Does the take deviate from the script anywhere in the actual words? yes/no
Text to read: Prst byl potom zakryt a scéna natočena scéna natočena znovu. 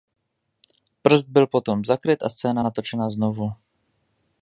yes